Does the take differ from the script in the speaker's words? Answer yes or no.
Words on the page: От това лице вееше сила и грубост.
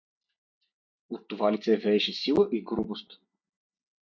no